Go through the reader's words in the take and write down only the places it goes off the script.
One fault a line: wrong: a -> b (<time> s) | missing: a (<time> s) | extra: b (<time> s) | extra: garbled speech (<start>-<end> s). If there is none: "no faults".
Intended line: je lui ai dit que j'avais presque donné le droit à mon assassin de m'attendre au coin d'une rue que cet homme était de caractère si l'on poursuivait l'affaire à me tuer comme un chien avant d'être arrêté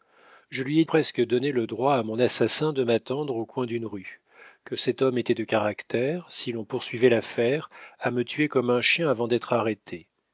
missing: dit que j'avais (0.8 s)